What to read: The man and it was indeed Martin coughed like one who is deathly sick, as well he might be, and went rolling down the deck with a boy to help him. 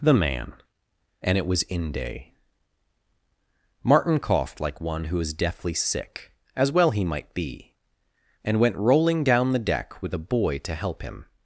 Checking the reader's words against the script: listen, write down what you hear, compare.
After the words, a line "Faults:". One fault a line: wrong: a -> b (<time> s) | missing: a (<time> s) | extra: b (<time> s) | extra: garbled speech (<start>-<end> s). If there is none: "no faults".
The man and it was inde Martin coughed like one who is deathly sick, as well he might be, and went rolling down the deck with a boy to help him.
Faults:
wrong: indeed -> inde (1.6 s)